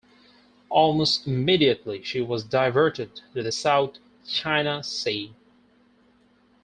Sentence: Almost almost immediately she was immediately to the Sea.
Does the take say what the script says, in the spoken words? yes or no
no